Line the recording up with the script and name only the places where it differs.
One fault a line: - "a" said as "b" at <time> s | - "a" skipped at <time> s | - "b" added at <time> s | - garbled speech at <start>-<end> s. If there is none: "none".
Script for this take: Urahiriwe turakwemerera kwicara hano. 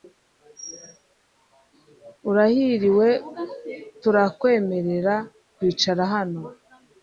none